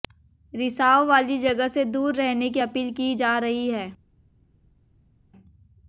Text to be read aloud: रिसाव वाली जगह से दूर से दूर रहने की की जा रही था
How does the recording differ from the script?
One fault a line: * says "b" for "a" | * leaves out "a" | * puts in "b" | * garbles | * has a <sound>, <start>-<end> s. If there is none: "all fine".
* leaves out "से दूर"
* puts in "अपील"
* says "है" for "था"